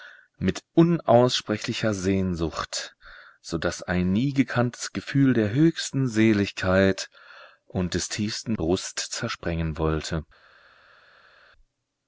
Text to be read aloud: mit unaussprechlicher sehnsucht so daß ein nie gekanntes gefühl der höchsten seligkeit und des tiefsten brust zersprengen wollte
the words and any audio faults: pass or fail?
pass